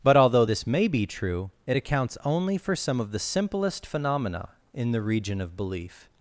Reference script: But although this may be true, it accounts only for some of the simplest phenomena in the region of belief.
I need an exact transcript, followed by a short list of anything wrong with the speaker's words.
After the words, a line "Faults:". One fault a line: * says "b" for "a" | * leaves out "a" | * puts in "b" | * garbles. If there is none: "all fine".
But although this may be true, it accounts only for some of the simplest phenomena in the region of belief.
Faults:
all fine